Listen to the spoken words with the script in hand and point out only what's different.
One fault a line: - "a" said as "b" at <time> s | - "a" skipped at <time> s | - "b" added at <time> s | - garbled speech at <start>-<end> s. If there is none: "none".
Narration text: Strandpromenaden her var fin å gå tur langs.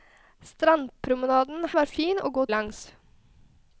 - "her" skipped at 1.7 s
- "tur" skipped at 2.4 s